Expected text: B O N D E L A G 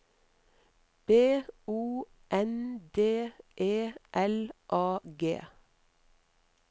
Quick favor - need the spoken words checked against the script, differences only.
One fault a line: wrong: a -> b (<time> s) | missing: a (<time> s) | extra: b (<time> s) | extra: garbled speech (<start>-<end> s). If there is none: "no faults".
no faults